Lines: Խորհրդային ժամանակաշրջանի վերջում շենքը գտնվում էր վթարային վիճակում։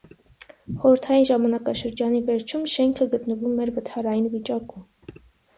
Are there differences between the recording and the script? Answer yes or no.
no